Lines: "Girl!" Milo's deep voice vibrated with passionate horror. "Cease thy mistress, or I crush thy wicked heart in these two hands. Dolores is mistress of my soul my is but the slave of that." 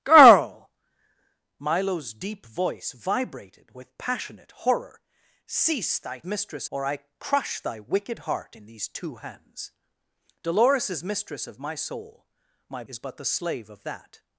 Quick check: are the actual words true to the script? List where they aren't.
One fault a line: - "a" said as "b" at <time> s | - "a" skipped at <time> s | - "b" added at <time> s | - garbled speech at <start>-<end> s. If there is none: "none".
none